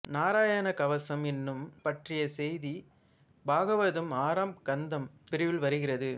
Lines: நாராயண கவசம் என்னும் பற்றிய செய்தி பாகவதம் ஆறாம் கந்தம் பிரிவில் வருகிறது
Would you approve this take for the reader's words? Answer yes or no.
yes